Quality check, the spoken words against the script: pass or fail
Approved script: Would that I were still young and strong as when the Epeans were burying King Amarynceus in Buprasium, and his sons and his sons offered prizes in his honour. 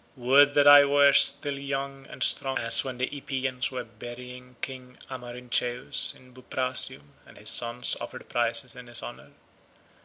fail